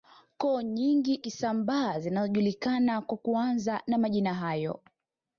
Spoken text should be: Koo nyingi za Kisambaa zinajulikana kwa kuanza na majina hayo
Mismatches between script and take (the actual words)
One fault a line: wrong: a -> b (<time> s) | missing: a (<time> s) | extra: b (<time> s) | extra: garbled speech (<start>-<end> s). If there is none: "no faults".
missing: za (1.2 s)